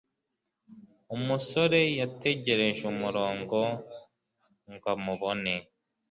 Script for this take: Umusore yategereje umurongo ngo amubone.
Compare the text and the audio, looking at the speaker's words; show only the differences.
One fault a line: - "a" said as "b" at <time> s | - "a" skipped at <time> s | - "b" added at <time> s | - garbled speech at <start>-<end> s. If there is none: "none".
none